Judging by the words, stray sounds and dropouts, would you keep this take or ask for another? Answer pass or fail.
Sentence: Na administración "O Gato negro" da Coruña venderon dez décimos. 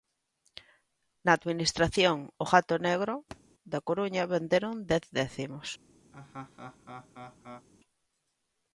fail